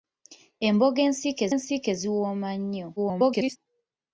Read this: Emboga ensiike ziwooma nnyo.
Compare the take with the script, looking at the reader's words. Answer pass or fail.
fail